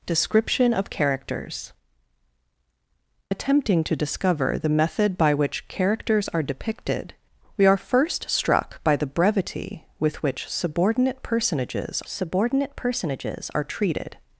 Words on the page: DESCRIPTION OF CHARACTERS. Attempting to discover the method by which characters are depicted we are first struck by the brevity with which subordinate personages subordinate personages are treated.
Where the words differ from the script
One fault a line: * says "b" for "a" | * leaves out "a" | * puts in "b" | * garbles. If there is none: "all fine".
all fine